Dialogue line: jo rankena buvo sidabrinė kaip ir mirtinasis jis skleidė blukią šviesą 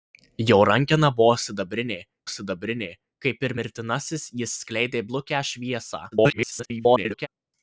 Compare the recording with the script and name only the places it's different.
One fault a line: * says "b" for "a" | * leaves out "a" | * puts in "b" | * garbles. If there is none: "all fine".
* puts in "sidabrinė"
* garbles